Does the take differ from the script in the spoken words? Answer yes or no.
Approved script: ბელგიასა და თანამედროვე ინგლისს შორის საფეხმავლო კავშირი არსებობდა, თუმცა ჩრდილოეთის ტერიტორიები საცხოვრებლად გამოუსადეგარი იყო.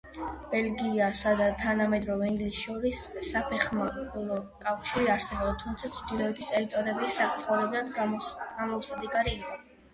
no